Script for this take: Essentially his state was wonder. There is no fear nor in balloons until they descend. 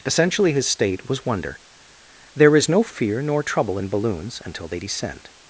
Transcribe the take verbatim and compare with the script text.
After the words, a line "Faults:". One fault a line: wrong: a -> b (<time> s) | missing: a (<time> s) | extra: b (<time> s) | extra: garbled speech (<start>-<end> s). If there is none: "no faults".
Essentially his state was wonder. There is no fear nor trouble in balloons until they descend.
Faults:
extra: trouble (3.4 s)